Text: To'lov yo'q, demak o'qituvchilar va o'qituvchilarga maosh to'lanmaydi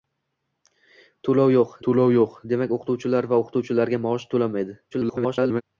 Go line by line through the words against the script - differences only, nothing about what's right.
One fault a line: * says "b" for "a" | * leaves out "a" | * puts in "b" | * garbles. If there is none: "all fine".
* puts in "to'lov yo'q"
* garbles